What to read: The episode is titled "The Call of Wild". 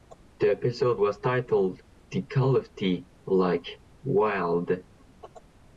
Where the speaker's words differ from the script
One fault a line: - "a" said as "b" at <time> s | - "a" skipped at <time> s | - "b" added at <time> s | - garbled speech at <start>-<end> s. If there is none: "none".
- "is" said as "was" at 1.0 s
- "the Like" added at 2.8 s